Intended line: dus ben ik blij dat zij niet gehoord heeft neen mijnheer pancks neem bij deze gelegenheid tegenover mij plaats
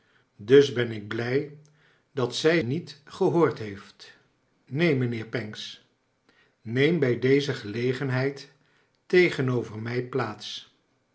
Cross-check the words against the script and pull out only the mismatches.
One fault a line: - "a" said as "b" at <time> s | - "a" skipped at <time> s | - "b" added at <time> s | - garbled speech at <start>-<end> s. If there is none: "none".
none